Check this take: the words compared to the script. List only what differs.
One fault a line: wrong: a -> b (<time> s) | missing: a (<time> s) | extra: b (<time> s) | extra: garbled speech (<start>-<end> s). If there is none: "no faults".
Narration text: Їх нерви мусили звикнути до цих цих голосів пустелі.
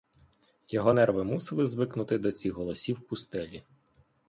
wrong: Їх -> Його (0.7 s)
missing: цих (2.5 s)